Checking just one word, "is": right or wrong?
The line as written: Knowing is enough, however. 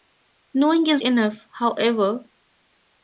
right